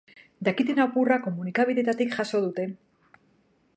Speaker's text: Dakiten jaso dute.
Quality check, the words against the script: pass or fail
fail